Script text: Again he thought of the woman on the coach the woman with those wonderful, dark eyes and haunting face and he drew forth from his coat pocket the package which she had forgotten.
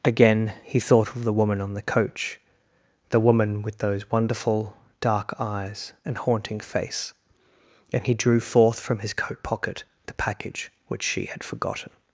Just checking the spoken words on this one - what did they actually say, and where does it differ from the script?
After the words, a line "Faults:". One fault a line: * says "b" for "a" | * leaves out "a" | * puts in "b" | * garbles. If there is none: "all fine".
Again he thought of the woman on the coach the woman with those wonderful, dark eyes and haunting face and he drew forth from his coat pocket the package which she had forgotten.
Faults:
all fine